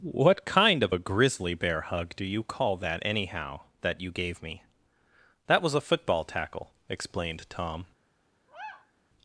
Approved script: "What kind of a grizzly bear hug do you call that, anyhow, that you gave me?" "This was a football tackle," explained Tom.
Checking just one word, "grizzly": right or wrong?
right